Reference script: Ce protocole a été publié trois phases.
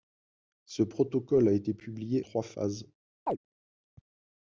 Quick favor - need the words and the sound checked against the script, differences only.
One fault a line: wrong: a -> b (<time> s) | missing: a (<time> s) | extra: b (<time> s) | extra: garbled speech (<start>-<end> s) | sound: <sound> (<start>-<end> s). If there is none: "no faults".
sound: chirp (3.3-3.4 s)